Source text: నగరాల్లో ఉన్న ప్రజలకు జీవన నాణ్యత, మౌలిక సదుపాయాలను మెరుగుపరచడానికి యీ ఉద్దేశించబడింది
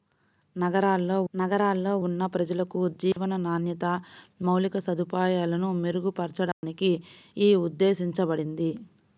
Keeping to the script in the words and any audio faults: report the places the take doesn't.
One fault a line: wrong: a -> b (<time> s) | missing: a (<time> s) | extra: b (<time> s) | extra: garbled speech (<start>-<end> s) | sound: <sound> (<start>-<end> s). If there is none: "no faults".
extra: నగరాల్లో (1.3 s)
sound: dropout (3.1-3.2 s)
sound: dropout (6.5-6.6 s)